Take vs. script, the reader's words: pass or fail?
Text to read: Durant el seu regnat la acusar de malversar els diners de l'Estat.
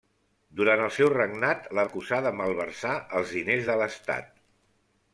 pass